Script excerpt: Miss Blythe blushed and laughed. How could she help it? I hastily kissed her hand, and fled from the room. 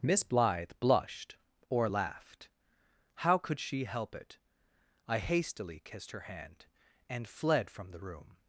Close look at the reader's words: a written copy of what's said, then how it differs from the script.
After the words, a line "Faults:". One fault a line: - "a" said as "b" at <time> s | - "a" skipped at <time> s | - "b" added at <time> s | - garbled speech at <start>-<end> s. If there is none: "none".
Miss Blythe blushed or laughed. How could she help it? I hastily kissed her hand, and fled from the room.
Faults:
- "and" said as "or" at 1.7 s